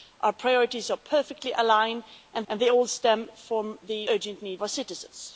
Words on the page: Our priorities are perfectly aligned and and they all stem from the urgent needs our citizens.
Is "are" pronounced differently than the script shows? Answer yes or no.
no